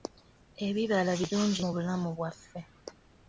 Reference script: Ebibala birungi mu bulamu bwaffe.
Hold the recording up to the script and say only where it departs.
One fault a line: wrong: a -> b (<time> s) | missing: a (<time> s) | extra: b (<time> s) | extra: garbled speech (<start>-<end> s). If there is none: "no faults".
no faults